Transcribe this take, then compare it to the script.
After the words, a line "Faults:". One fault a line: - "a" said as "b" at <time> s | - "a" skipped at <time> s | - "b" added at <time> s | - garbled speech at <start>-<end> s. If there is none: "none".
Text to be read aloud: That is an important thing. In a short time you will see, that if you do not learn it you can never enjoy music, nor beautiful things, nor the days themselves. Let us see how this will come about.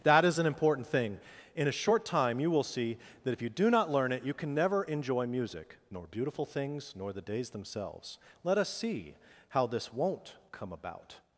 That is an important thing. In a short time you will see, that if you do not learn it you can never enjoy music, nor beautiful things, nor the days themselves. Let us see how this won't come about.
Faults:
- "will" said as "won't" at 9.9 s